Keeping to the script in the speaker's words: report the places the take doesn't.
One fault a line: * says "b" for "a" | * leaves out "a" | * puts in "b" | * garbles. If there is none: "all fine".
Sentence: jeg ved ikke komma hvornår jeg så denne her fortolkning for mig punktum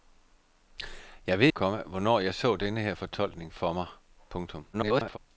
* leaves out "ikke"
* garbles